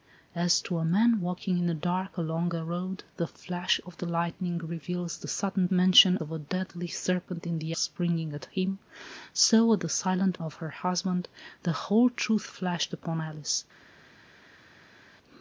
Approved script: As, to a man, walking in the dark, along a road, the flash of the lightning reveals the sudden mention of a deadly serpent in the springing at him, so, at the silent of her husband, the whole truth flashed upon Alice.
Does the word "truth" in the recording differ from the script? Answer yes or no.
no